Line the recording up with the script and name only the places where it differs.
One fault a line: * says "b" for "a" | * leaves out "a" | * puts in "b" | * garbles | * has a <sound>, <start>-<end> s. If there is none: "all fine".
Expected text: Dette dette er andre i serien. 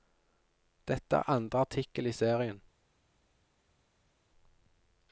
* leaves out "dette"
* puts in "artikkel"